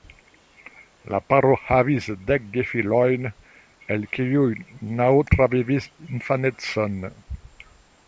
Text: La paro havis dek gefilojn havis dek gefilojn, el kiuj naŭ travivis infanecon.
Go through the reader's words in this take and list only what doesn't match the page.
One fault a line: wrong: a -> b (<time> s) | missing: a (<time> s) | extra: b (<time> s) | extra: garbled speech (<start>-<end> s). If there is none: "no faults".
missing: havis dek gefilojn (3.3 s)